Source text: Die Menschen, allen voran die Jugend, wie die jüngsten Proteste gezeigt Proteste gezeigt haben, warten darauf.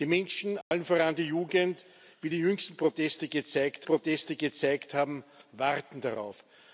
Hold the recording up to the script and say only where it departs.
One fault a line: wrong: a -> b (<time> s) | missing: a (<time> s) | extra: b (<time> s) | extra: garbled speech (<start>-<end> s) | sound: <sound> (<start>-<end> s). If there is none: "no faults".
sound: dropout (0.6-0.7 s)